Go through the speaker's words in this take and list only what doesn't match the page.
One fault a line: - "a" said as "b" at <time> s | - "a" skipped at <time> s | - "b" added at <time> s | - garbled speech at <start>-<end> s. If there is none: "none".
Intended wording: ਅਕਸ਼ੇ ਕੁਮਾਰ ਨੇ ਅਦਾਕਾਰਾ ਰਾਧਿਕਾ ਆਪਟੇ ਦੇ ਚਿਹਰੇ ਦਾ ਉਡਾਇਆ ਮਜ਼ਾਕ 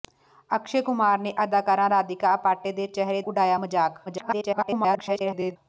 - "ਦਾ" skipped at 3.2 s
- garbled speech at 4.1-5.6 s